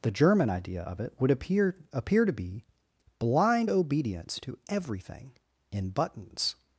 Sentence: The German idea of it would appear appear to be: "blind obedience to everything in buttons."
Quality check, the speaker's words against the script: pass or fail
pass